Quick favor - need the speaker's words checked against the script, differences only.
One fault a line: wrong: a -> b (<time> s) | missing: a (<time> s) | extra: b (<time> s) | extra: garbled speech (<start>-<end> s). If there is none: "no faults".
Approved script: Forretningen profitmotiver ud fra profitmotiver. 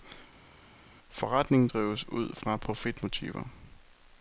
wrong: profitmotiver -> drives (1.7 s)